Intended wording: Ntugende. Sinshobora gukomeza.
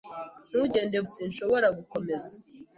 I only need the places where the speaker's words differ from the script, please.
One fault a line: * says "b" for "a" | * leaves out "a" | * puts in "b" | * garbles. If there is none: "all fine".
all fine